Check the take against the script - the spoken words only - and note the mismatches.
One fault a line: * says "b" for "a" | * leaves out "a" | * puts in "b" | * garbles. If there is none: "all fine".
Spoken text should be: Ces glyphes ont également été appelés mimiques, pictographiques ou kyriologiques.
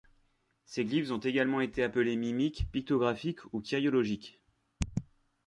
all fine